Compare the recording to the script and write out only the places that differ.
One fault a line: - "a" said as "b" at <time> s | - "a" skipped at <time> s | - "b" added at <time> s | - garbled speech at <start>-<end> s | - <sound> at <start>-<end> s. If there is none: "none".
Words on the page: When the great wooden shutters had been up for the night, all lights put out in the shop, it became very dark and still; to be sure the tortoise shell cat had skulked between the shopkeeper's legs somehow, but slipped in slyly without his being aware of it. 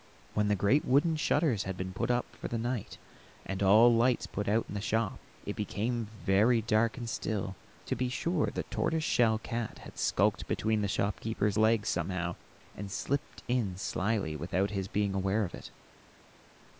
- "put" added at 1.9 s
- "and" added at 3.5 s
- "but" said as "and" at 12.7 s